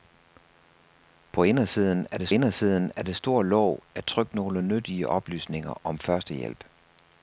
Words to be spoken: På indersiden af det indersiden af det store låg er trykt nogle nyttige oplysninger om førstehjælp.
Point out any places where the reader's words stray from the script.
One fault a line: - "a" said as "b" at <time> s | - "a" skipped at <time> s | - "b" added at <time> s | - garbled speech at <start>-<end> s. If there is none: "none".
none